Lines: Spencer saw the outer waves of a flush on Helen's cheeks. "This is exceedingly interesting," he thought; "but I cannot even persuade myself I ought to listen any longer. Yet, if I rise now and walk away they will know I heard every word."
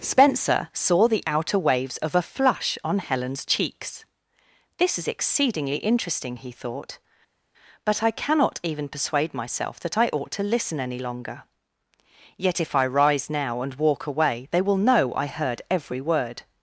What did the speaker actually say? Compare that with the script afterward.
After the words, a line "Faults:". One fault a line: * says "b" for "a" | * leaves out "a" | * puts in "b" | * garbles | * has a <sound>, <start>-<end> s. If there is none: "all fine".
Spencer saw the outer waves of a flush on Helen's cheeks. "This is exceedingly interesting," he thought; "but I cannot even persuade myself that I ought to listen any longer. Yet, if I rise now and walk away they will know I heard every word."
Faults:
* puts in "that"